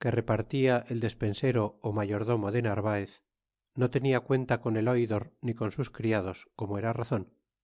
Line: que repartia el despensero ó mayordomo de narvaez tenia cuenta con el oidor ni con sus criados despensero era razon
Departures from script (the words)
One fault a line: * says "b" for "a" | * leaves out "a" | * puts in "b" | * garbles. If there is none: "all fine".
* puts in "no"
* says "como" for "despensero"